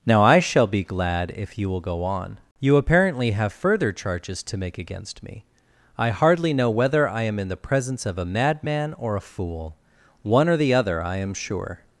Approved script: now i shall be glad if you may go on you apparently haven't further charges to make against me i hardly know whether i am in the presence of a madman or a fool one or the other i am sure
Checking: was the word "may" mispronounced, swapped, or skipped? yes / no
yes